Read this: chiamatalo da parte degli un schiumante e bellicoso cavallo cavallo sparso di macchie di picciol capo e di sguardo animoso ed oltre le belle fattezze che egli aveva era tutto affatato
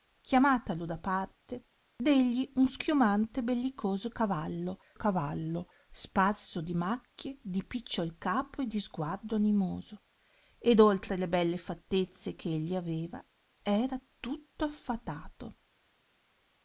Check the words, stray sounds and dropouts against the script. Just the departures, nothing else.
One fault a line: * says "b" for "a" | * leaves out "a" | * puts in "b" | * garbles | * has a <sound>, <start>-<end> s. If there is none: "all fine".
all fine